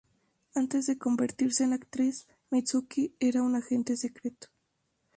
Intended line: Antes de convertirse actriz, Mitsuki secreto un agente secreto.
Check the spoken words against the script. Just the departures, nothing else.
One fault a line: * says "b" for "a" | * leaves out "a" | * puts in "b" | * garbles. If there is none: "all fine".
* puts in "en"
* says "era" for "secreto"